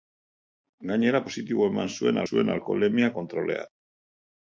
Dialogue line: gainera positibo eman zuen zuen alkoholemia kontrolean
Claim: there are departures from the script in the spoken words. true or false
false